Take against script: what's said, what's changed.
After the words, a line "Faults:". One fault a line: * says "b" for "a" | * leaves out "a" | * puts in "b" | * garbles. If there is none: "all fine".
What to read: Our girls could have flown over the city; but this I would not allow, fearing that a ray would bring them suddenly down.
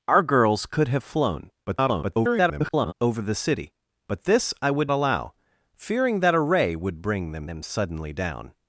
Our girls could have flown [garbled] over the city; but this I would allow, fearing that a ray would bring them them suddenly down.
Faults:
* garbles
* leaves out "not"
* puts in "them"